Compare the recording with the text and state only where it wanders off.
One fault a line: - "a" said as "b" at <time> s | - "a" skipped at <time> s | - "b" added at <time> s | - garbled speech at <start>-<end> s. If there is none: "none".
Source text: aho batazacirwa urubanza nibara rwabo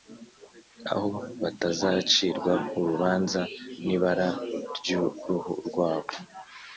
- "ryuruhu" added at 4.8 s